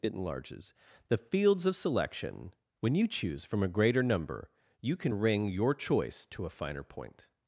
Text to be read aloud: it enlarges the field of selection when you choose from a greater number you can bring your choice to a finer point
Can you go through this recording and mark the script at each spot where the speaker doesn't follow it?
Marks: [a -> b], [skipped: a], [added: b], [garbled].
it enlarges the [field -> fields] of selection when you choose from a greater number you can [bring -> ring] your choice to a finer point